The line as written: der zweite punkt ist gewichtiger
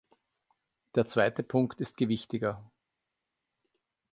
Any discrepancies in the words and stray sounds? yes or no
no